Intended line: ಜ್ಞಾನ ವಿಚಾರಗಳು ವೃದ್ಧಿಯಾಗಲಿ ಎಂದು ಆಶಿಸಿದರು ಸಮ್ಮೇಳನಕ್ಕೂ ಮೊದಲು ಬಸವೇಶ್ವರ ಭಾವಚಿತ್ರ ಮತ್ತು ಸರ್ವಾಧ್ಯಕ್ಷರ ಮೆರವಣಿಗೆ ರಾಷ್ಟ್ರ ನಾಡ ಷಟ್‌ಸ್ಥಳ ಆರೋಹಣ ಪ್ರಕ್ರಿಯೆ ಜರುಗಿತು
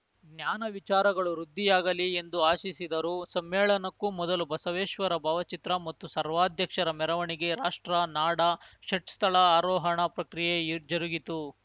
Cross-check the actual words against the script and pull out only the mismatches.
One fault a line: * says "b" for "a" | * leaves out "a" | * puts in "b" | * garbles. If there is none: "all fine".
all fine